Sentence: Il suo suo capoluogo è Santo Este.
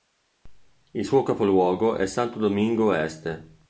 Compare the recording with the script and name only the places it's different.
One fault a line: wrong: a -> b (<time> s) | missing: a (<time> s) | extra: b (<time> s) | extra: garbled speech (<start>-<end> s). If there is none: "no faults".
missing: suo (1.2 s)
extra: Domingo (2.4 s)